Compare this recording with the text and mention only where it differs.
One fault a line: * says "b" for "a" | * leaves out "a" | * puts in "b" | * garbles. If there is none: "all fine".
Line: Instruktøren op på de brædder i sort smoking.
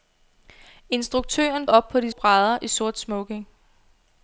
all fine